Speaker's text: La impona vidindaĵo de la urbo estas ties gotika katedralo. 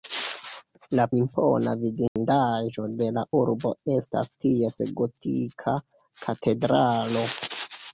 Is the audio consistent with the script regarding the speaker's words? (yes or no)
yes